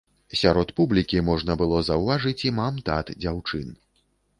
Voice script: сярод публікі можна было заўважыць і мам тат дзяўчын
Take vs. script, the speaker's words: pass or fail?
pass